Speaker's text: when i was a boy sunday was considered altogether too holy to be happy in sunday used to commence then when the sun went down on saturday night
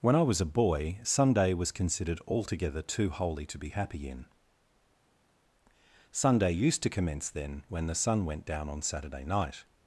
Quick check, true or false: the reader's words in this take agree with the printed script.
true